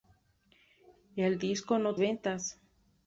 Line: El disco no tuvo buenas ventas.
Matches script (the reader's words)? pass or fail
fail